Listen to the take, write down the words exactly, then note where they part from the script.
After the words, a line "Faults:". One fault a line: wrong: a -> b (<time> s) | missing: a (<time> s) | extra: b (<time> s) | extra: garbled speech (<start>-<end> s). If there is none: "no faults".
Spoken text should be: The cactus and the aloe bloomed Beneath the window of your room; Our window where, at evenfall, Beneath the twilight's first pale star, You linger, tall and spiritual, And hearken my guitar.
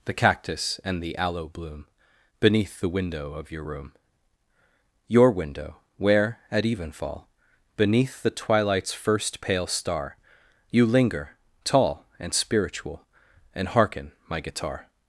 The cactus and the aloe bloom Beneath the window of your room; Your window where, at evenfall, Beneath the twilight's first pale star, You linger, tall and spiritual, And hearken my guitar.
Faults:
wrong: bloomed -> bloom (1.5 s)
wrong: Our -> Your (5.1 s)